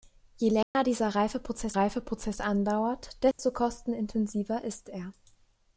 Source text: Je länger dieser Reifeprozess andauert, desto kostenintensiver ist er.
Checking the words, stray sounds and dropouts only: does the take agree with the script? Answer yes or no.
no